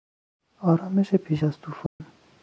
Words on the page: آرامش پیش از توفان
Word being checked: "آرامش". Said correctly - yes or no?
yes